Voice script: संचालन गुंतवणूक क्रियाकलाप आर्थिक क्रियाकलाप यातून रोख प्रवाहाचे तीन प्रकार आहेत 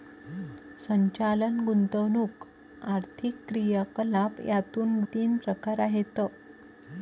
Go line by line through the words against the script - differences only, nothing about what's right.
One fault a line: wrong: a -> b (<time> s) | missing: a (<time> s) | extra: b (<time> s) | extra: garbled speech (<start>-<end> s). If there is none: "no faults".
missing: क्रियाकलाप (2.5 s)
missing: रोख प्रवाहाचे (5.0 s)